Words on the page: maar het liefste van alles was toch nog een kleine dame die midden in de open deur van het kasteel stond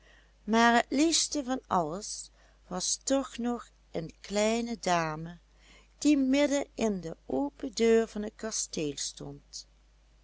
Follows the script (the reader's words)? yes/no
yes